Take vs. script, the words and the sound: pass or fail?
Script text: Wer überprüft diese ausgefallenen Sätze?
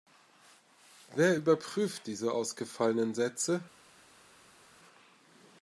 pass